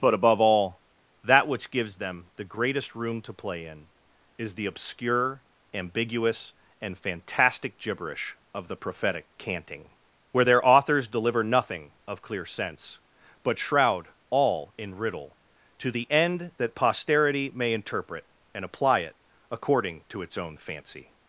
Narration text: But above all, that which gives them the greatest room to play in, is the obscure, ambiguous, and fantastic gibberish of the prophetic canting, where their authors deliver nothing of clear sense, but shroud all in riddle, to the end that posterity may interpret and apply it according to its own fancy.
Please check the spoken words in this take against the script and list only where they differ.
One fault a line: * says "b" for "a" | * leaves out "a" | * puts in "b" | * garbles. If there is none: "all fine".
all fine